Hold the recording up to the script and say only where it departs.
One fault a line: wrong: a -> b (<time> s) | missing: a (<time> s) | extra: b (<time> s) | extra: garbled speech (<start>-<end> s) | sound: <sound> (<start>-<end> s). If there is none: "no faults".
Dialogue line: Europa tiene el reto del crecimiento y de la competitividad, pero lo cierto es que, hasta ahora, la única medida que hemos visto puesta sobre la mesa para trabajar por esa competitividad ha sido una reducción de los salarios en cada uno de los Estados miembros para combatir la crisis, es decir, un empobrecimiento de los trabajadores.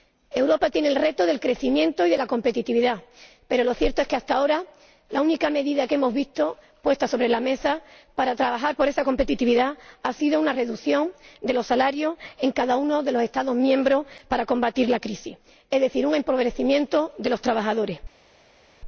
no faults